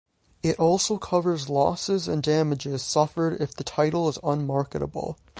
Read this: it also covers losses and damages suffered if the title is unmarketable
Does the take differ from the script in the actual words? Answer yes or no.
no